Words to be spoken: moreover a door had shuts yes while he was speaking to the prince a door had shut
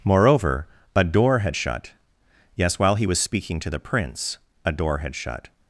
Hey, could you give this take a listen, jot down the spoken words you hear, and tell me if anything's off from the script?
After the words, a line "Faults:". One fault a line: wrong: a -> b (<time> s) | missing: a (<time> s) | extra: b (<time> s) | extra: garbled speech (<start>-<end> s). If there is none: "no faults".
moreover a door had shut yes while he was speaking to the prince a door had shut
Faults:
wrong: shuts -> shut (1.5 s)